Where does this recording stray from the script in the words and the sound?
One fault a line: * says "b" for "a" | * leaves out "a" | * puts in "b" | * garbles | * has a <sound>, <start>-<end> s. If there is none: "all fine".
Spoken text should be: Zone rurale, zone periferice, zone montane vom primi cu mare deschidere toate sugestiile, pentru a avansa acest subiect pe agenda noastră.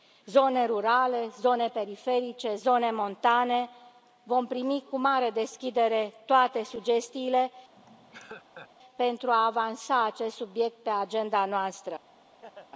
* has a laugh, 7.8-8.7 s
* has a laugh, 12.4-12.7 s